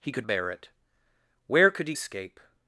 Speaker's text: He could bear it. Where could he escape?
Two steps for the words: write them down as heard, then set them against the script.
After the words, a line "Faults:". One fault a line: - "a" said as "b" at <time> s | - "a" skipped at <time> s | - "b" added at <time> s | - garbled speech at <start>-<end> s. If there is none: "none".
He could bear it. Where could he escape?
Faults:
none